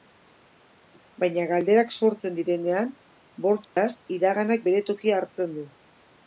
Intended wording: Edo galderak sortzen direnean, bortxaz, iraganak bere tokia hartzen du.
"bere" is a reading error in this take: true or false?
false